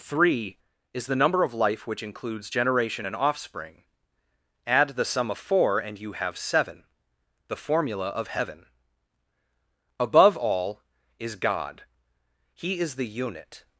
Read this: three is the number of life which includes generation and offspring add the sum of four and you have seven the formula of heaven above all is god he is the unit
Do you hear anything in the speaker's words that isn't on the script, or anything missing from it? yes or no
no